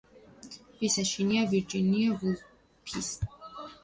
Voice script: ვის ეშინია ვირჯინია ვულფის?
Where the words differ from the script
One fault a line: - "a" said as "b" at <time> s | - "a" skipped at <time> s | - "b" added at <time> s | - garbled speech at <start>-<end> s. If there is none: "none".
none